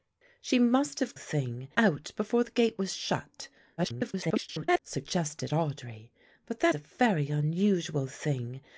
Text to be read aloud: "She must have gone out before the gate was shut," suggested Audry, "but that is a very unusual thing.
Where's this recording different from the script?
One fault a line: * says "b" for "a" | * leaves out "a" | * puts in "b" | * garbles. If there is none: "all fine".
* says "thing" for "gone"
* garbles
* leaves out "is"